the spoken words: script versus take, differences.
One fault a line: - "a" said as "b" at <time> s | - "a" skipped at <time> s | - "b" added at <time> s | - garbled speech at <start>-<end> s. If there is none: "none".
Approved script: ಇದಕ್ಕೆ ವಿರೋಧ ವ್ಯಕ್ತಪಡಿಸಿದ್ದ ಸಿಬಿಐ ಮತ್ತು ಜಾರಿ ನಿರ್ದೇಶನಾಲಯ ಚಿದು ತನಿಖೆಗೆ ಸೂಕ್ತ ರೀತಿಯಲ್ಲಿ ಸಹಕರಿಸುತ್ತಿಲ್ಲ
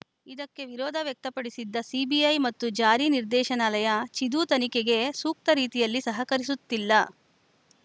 none